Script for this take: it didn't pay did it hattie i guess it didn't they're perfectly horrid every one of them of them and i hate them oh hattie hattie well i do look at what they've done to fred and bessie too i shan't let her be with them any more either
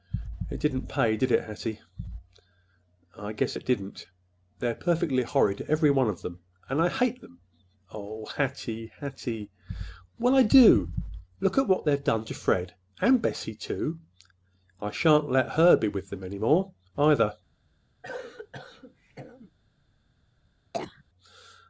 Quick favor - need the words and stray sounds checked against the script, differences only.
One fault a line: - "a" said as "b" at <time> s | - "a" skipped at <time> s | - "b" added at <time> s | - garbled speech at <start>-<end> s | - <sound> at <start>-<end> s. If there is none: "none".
- "of them" skipped at 6.4 s
- cough at 18.0-19.5 s
- cough at 20.7-21.0 s